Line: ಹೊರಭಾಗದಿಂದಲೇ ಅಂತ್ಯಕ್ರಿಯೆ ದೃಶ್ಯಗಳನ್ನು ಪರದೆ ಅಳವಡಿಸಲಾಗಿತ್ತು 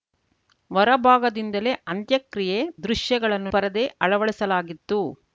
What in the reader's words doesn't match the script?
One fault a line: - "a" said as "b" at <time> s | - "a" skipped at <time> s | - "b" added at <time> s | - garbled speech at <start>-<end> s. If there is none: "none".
none